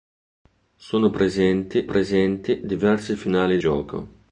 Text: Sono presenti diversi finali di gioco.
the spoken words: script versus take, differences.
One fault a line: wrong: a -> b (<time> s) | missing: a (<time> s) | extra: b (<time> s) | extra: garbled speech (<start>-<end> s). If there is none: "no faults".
extra: presenti (1.9 s)
missing: di (3.6 s)